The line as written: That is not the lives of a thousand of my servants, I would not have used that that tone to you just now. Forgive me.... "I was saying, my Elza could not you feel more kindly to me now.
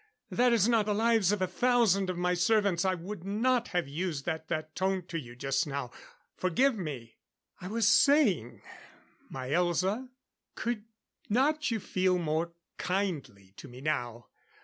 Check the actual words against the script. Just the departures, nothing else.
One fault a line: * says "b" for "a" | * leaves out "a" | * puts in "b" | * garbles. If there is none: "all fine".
all fine